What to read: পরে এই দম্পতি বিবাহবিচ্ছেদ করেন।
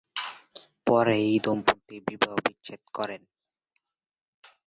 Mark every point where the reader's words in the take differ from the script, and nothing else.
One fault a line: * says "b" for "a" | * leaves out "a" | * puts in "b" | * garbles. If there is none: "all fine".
all fine